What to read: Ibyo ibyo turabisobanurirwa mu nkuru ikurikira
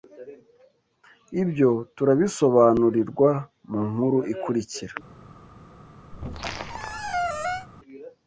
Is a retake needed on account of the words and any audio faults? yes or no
yes